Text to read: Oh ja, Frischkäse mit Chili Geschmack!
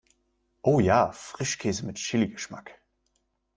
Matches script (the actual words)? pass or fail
pass